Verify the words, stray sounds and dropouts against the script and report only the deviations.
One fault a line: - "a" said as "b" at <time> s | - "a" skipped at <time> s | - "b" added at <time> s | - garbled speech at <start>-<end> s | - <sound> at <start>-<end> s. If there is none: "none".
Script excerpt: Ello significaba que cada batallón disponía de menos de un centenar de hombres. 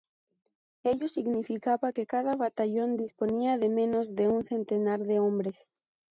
none